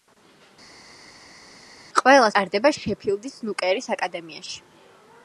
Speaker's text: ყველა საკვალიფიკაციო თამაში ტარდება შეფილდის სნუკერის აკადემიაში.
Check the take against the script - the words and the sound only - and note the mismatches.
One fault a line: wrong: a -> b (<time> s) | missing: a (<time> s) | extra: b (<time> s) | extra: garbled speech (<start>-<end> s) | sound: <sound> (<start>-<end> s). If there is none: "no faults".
missing: საკვალიფიკაციო თამაში (2.3 s)